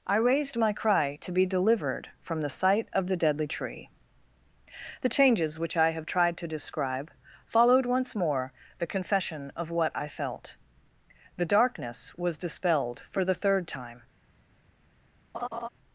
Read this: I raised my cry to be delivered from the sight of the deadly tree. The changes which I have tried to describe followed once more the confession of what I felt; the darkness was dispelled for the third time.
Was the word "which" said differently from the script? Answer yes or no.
no